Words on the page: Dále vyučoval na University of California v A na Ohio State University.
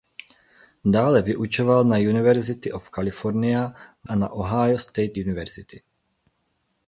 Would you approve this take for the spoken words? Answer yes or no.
yes